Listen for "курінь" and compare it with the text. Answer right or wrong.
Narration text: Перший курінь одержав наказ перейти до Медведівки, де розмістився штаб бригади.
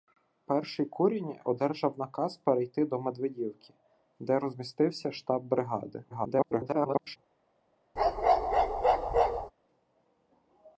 right